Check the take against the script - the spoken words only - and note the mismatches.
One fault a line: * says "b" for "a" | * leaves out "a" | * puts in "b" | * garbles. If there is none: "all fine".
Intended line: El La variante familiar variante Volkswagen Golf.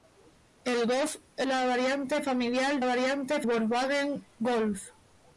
all fine